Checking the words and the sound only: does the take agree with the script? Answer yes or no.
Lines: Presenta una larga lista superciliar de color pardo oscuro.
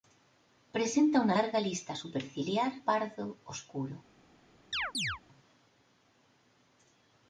no